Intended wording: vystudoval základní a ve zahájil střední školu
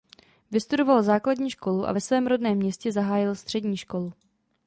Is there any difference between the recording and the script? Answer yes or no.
yes